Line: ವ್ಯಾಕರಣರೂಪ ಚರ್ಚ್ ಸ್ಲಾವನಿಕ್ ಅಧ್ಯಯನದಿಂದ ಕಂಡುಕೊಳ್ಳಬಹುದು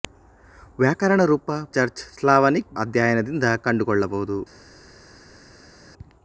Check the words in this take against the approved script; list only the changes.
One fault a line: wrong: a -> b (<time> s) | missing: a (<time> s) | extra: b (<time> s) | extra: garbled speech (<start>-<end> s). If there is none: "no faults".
no faults